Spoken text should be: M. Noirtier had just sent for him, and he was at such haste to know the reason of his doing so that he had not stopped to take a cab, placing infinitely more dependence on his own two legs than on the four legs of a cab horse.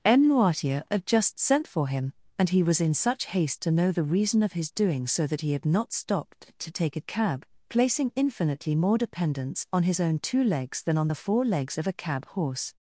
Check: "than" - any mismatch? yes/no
no